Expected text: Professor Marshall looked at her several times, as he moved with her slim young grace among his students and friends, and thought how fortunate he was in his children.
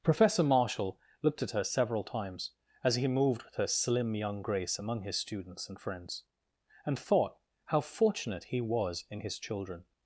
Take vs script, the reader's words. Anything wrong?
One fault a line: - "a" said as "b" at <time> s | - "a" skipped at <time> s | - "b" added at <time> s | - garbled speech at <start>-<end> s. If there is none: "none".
none